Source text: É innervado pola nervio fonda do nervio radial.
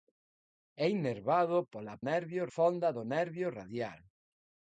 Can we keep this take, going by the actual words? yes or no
yes